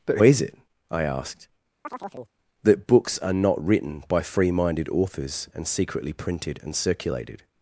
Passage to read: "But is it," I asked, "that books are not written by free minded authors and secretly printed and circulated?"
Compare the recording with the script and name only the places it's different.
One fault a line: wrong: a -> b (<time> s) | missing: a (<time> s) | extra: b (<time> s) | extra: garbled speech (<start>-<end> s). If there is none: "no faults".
no faults